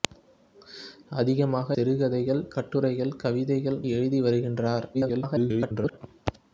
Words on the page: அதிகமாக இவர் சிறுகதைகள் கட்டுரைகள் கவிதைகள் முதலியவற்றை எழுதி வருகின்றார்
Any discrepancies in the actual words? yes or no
yes